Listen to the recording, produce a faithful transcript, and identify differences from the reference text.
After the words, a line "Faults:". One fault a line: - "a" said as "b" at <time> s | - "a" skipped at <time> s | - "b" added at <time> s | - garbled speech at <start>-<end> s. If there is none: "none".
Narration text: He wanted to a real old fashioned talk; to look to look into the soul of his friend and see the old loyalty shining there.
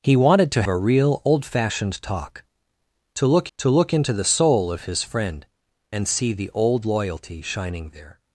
He wanted to a real old fashioned talk; to look to look into the soul of his friend and see the old loyalty shining there.
Faults:
none